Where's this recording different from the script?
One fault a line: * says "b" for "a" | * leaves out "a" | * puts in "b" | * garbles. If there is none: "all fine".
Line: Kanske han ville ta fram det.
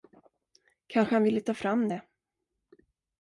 all fine